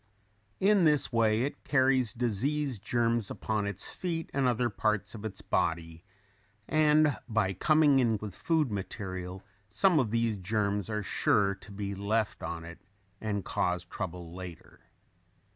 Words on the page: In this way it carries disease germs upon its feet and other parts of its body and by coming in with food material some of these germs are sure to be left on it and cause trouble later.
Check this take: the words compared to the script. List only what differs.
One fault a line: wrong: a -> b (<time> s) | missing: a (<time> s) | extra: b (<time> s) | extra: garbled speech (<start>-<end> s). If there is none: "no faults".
no faults